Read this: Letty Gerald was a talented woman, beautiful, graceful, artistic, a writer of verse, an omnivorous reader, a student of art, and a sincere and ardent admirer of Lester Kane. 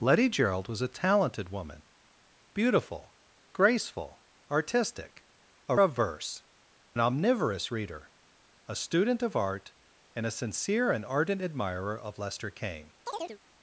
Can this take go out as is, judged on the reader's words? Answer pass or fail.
fail